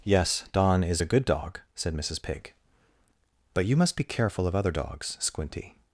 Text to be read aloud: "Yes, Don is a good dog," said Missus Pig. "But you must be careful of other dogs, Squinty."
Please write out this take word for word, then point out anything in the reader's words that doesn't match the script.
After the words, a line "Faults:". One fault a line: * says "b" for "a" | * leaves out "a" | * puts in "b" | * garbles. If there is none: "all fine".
"Yes, Don is a good dog," said Missus Pig. "But you must be careful of other dogs, Squinty."
Faults:
all fine